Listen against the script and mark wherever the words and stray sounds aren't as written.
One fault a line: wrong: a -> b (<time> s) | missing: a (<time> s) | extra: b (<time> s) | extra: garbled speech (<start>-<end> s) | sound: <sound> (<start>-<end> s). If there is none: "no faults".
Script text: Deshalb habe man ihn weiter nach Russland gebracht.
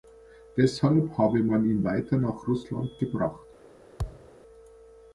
sound: thud (4.0-4.3 s)